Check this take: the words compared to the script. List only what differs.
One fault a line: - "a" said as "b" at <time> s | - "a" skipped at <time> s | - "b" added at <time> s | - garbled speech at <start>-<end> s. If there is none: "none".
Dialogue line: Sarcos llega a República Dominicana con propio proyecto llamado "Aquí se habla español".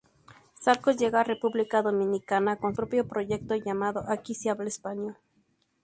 none